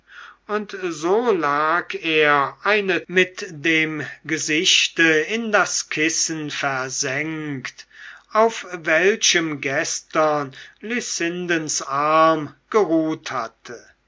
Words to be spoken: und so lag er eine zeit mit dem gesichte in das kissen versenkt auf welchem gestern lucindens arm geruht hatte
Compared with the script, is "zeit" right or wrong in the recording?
wrong